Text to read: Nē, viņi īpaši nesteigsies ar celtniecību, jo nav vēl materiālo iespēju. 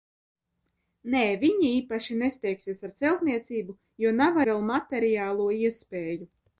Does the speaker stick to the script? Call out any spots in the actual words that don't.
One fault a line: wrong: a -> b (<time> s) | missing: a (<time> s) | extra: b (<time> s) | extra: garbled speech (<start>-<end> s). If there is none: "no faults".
no faults